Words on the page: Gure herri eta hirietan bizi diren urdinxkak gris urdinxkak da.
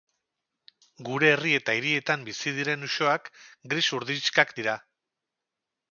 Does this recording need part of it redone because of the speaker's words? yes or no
yes